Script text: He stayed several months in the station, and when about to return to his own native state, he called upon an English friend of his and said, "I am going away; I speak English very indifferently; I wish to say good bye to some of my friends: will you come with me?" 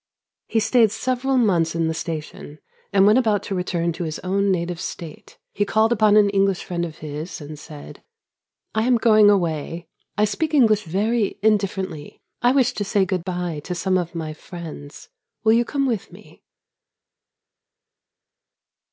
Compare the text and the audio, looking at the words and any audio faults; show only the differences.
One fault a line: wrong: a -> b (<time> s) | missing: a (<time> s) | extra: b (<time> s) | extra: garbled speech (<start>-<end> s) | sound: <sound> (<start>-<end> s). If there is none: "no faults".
no faults